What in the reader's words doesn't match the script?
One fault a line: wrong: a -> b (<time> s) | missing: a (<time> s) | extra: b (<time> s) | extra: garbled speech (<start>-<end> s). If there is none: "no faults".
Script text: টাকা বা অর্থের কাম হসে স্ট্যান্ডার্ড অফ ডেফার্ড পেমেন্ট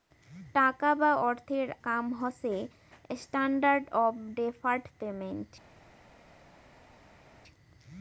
no faults